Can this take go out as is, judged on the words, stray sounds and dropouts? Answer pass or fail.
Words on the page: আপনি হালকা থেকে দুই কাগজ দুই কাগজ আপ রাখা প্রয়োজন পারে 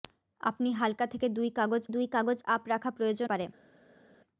pass